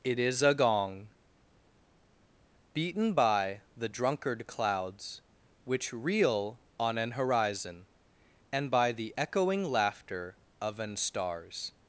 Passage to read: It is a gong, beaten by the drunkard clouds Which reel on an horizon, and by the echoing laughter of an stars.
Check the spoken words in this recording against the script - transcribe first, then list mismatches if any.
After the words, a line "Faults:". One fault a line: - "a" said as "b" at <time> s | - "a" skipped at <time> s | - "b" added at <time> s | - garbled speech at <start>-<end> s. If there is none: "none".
It is a gong, beaten by the drunkard clouds Which reel on an horizon, and by the echoing laughter of an stars.
Faults:
none